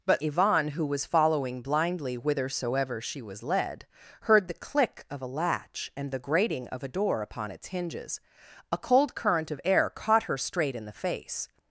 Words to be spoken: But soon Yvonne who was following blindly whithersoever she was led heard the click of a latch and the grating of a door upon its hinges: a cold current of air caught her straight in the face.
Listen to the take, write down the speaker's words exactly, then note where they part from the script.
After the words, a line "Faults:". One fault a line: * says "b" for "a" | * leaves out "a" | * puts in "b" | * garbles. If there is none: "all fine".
But Yvonne who was following blindly whithersoever she was led heard the click of a latch and the grating of a door upon its hinges: a cold current of air caught her straight in the face.
Faults:
* leaves out "soon"